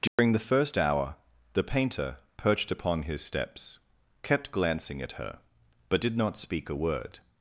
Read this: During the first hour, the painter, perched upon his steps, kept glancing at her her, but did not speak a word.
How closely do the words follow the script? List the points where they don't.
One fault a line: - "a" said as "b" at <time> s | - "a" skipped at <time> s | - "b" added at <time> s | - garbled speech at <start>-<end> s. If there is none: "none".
- "her" skipped at 5.4 s